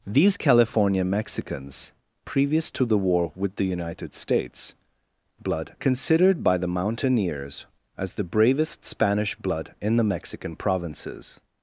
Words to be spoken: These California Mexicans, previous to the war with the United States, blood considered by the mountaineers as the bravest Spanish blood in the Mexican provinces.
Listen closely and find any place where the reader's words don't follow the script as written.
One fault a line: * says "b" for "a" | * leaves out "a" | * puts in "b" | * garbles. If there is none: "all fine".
all fine